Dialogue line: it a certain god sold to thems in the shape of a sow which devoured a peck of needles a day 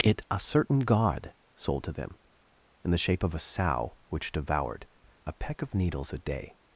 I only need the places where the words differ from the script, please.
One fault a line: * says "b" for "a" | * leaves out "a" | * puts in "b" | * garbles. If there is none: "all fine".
* says "them" for "thems"